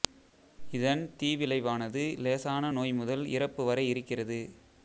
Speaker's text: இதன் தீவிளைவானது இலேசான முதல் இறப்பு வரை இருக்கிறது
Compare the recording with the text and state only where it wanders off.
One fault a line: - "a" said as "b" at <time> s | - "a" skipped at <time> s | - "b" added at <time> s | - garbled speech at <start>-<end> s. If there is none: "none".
- "நோய்" added at 2.7 s